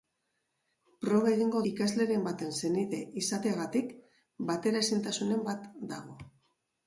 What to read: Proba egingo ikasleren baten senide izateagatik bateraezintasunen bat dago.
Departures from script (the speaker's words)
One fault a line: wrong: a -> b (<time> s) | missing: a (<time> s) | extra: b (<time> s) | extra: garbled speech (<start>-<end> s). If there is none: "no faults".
no faults